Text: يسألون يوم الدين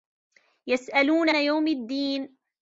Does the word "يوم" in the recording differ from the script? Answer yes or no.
no